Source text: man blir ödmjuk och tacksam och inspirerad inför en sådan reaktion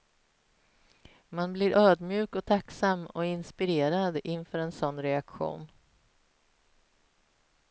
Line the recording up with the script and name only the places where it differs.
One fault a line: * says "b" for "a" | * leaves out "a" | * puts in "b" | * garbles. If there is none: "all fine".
all fine